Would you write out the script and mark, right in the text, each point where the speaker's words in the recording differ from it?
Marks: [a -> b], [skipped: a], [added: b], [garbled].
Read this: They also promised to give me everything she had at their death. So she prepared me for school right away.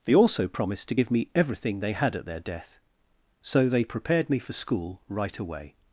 They also promised to give me everything [she -> they] had at their death. So [she -> they] prepared me for school right away.